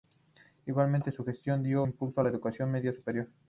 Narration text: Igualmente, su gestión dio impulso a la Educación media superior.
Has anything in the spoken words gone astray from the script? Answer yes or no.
no